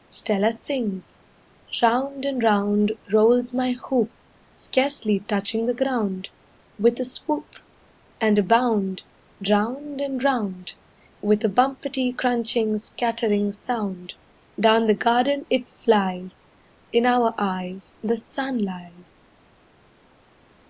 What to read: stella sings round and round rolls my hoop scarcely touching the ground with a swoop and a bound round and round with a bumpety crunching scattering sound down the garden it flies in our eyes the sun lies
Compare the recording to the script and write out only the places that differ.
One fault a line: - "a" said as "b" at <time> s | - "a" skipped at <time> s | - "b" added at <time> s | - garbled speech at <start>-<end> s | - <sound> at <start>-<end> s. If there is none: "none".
none